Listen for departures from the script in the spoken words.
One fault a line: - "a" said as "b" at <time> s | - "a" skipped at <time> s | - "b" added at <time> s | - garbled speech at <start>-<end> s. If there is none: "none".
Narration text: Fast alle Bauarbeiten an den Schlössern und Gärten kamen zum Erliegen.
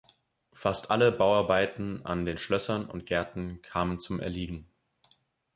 none